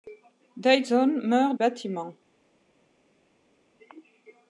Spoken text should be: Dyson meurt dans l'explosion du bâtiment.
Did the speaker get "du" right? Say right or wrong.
wrong